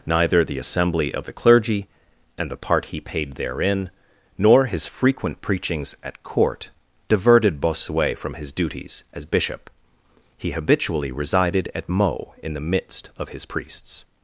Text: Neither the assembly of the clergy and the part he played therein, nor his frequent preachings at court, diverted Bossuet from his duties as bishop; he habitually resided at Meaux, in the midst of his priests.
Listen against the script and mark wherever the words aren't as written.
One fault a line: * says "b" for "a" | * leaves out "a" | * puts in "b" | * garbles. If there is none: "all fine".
* says "paid" for "played"